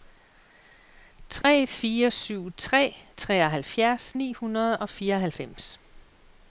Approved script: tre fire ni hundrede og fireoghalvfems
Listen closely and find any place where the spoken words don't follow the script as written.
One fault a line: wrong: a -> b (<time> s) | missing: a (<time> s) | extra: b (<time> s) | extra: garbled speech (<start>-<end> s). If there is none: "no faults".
extra: syv tre treoghalvfjerds (2.1 s)